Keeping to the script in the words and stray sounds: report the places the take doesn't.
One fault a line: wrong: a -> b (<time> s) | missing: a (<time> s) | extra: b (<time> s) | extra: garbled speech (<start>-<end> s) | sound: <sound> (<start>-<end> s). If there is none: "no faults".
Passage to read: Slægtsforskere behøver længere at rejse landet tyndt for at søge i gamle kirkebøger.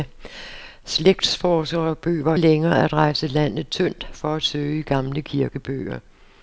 no faults